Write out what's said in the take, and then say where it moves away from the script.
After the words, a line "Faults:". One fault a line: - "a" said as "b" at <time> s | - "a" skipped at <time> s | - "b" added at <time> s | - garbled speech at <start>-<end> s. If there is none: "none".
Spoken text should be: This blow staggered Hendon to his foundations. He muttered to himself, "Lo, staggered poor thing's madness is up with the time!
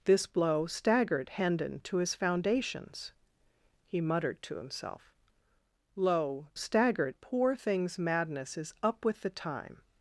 This blow staggered Hendon to his foundations. He muttered to himself, "Lo, staggered poor thing's madness is up with the time!
Faults:
none